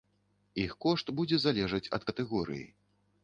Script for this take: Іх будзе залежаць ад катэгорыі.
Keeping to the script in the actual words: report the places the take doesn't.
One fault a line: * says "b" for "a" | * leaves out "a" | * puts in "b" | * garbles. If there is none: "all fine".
* puts in "кошт"